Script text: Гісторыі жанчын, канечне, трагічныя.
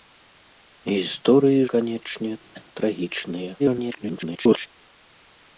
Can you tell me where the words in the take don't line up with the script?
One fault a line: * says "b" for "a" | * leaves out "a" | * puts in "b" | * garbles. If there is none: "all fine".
* leaves out "жанчын"
* garbles